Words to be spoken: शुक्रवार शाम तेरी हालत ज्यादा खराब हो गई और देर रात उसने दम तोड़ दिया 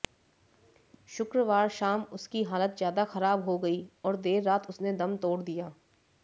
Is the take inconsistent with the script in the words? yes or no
yes